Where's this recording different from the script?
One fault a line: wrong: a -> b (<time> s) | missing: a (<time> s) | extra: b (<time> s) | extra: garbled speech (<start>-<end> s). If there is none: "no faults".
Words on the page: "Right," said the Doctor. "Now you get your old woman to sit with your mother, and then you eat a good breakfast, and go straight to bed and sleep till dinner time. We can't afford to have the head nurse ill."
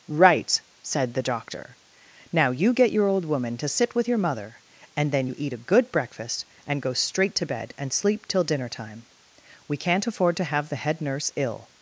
no faults